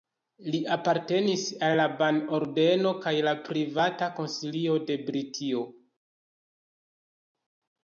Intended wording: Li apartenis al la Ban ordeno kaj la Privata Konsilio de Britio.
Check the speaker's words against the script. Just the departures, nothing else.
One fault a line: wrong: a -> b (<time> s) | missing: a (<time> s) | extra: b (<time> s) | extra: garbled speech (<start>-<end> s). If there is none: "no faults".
no faults